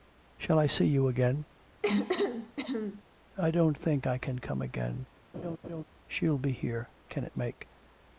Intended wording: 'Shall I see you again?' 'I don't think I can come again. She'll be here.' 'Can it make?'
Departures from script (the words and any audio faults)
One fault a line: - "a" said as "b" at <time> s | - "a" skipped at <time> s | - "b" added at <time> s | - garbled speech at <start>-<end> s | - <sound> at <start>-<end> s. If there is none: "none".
- cough at 1.8-3.0 s
- laugh at 5.3-5.8 s